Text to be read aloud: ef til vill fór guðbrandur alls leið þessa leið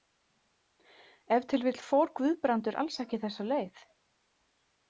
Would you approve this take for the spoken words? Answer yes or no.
no